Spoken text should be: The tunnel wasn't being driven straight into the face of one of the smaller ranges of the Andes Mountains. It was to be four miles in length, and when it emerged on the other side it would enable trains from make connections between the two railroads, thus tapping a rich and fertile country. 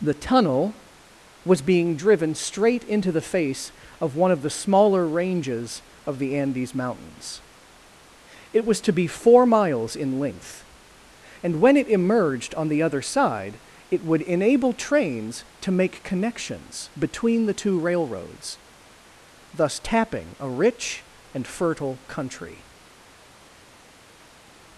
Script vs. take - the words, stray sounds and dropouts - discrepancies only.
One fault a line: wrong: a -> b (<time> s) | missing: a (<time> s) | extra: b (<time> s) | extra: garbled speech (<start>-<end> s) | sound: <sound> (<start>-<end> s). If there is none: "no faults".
wrong: wasn't -> was (1.4 s)
wrong: from -> to (15.6 s)